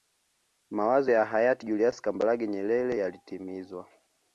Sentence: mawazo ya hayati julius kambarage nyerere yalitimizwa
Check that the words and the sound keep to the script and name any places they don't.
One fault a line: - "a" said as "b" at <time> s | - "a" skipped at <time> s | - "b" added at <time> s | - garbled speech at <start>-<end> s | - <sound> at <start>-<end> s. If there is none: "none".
none